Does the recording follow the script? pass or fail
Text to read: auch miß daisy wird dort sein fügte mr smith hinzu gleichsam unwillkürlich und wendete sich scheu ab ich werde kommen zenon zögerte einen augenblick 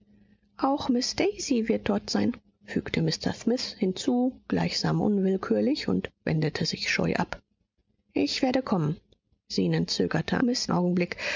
fail